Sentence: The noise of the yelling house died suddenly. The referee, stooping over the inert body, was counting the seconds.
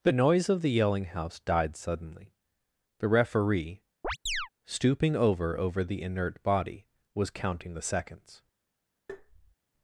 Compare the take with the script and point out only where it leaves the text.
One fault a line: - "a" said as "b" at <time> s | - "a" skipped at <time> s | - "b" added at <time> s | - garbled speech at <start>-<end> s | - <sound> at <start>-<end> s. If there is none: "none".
- chirp at 4.0-4.5 s
- "over" added at 5.6 s
- tap at 9.1-9.6 s